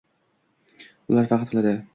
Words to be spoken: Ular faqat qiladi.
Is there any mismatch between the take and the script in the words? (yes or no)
no